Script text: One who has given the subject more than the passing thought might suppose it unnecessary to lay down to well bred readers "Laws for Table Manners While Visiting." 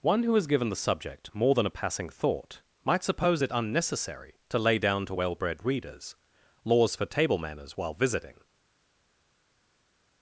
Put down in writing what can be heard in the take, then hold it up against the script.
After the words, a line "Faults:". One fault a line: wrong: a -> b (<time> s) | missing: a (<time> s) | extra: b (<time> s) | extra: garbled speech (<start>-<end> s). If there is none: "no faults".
One who has given the subject more than a passing thought might suppose it unnecessary to lay down to well bred readers "Laws for Table Manners While Visiting."
Faults:
wrong: the -> a (1.7 s)